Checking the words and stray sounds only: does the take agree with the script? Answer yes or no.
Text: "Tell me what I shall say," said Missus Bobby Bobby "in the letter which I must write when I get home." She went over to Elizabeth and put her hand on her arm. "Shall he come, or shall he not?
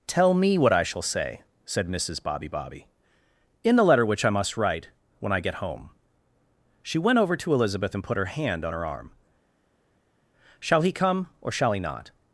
yes